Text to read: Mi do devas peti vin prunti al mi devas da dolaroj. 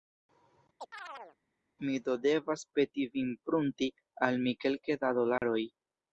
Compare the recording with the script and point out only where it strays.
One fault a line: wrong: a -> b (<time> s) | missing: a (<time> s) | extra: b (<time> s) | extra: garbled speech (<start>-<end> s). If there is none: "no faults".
wrong: devas -> kelke (4.7 s)